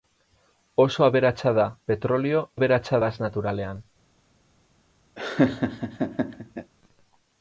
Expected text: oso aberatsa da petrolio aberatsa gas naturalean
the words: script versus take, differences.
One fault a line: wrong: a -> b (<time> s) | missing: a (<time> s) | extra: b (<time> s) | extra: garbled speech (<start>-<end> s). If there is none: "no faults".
no faults